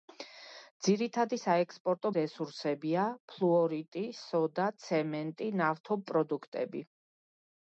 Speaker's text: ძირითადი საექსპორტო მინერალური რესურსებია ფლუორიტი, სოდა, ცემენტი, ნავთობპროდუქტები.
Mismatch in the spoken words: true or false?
true